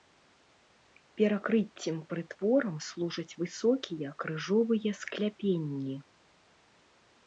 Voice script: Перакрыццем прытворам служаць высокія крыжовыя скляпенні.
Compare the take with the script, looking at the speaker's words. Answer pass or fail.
pass